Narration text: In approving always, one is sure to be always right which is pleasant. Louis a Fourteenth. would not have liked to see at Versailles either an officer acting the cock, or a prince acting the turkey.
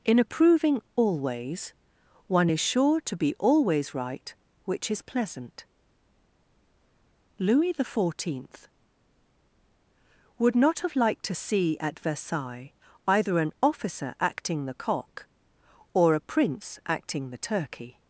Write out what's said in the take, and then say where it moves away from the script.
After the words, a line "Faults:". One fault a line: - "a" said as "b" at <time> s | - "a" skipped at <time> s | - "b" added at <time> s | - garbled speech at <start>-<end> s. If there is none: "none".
In approving always, one is sure to be always right which is pleasant. Louis the Fourteenth. would not have liked to see at Versailles either an officer acting the cock, or a prince acting the turkey.
Faults:
- "a" said as "the" at 7.7 s